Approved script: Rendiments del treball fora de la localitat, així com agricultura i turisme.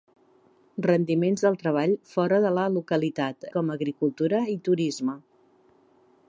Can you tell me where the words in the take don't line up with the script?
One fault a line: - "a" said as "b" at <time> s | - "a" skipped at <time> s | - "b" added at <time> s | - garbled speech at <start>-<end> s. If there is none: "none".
- "així" skipped at 3.5 s